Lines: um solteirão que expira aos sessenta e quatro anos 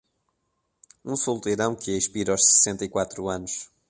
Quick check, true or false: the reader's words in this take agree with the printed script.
true